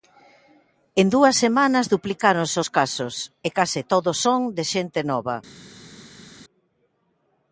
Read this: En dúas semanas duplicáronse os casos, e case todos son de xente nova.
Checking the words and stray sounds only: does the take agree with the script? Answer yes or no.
yes